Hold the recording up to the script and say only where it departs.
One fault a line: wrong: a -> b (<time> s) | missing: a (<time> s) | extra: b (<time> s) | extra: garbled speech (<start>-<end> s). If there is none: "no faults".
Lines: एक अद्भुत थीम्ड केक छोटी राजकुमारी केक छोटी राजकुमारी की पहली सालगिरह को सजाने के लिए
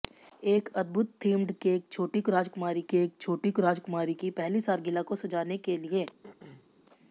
no faults